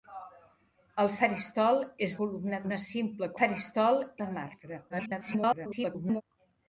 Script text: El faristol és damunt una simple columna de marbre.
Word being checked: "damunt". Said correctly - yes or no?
no